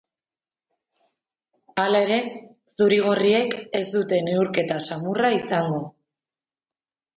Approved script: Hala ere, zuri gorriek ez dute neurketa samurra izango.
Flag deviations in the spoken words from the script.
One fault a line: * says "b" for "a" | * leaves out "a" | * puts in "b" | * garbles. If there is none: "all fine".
all fine